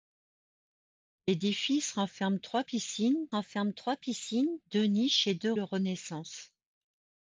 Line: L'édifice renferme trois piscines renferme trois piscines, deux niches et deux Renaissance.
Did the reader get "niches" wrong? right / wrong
right